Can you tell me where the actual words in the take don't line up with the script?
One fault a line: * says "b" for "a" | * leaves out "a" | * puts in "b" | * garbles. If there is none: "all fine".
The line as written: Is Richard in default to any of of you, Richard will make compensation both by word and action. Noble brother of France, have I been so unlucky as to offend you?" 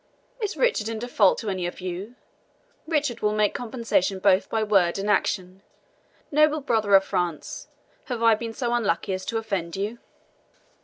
all fine